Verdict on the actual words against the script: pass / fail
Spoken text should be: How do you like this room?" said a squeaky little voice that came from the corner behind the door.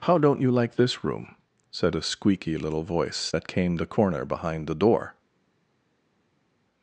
fail